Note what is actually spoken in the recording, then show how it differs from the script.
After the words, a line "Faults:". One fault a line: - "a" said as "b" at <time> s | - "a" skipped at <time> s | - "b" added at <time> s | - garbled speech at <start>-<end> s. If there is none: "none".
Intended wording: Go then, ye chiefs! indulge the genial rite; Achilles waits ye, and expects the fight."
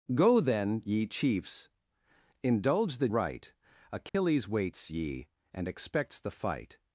Go then, ye chiefs! indulge the rite; Achilles waits ye, and expects the fight."
Faults:
- "genial" skipped at 3.1 s